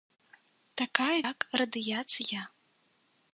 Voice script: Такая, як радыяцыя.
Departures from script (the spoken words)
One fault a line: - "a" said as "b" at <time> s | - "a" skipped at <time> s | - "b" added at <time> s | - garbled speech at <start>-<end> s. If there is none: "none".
none